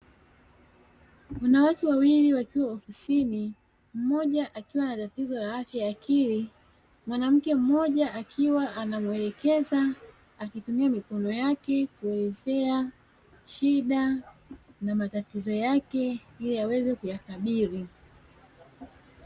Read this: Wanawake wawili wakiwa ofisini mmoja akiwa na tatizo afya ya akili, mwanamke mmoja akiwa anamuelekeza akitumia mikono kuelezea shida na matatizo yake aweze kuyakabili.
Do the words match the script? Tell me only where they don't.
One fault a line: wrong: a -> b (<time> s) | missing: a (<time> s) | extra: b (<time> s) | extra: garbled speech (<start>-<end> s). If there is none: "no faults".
extra: la (5.3 s)
extra: yake (11.3 s)
extra: ili (16.4 s)